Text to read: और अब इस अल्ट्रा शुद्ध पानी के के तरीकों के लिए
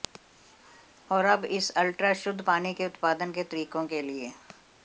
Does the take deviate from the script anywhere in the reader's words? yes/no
yes